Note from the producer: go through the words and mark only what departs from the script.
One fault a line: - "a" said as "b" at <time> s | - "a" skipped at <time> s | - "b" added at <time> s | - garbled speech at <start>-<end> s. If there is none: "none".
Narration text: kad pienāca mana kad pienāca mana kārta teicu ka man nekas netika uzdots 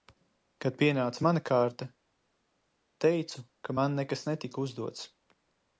- "kad pienāca mana" skipped at 1.4 s